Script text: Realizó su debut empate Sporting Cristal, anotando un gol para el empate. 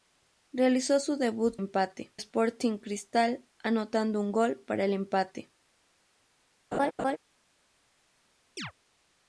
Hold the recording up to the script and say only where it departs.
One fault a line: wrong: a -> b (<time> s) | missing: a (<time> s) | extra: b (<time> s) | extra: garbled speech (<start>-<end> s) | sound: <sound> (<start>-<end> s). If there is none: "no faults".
sound: laugh (6.7-7.2 s)
sound: chirp (8.6-8.7 s)